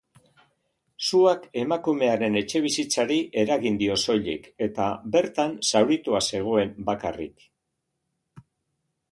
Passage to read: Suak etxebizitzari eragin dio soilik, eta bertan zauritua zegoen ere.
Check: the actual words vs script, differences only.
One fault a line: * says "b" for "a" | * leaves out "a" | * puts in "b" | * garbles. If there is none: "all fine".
* puts in "emakumearen"
* says "bakarrik" for "ere"